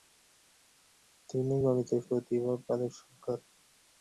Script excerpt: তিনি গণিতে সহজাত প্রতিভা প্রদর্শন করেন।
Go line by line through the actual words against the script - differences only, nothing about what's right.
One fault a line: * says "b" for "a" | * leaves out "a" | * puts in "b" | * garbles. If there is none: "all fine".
* leaves out "সহজাত"